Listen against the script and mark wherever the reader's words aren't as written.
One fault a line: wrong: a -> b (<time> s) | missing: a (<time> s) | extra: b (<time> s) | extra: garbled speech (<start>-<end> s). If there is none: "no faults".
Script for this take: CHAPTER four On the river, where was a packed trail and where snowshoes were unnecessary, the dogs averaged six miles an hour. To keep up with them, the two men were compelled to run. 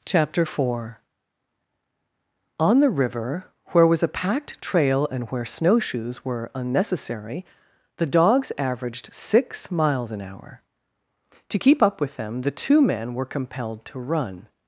no faults